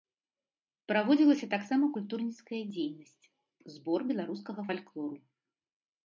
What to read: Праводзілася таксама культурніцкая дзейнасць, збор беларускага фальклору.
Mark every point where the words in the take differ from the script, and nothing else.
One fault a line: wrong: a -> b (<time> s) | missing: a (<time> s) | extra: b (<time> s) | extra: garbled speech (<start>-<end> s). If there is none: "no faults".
no faults